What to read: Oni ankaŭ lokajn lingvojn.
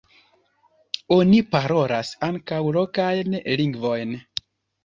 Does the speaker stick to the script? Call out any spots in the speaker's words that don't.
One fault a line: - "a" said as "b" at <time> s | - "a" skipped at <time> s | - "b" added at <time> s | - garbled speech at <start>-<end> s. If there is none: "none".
- "parolas" added at 1.6 s